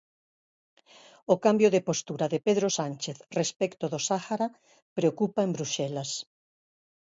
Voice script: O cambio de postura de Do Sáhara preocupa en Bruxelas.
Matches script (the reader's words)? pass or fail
fail